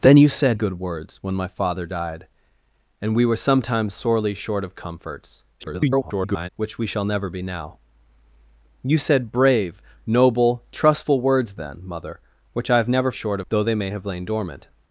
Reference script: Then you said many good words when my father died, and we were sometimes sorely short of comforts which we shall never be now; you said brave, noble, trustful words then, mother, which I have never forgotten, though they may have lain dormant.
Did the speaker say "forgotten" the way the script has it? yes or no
no